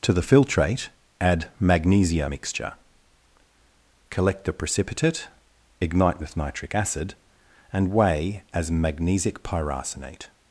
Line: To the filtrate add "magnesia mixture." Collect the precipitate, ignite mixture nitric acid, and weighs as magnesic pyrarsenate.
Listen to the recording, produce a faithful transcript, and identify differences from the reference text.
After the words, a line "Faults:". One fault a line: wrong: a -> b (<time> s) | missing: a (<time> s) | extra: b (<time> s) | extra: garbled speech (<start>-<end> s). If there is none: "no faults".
To the filtrate add "magnesia mixture." Collect the precipitate, ignite with nitric acid, and weigh as magnesic pyrarsenate.
Faults:
wrong: mixture -> with (6.2 s)
wrong: weighs -> weigh (7.9 s)